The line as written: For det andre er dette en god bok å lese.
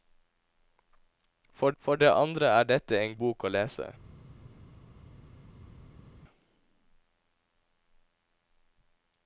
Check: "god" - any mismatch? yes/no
yes